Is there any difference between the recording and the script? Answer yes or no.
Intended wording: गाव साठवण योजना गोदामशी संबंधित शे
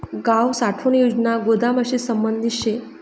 no